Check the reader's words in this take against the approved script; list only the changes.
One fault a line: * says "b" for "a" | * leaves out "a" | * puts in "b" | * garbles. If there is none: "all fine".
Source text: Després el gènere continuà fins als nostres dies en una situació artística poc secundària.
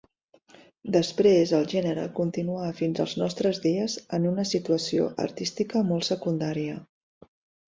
* says "molt" for "poc"